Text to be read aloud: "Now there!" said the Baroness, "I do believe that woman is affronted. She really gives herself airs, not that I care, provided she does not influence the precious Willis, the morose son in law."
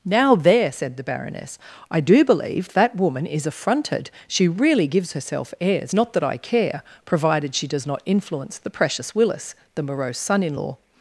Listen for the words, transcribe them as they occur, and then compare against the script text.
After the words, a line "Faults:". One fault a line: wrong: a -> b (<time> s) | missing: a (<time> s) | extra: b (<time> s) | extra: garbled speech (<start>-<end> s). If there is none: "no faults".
"Now there!" said the Baroness, "I do believe that woman is affronted. She really gives herself airs, not that I care, provided she does not influence the precious Willis, the morose son in law."
Faults:
no faults